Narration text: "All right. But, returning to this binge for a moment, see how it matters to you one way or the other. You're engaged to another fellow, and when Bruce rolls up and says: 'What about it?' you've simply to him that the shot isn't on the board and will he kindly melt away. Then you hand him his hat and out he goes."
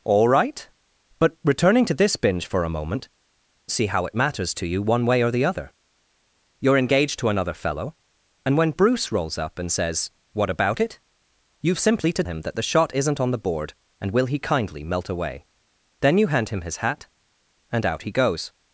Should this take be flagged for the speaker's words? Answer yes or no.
no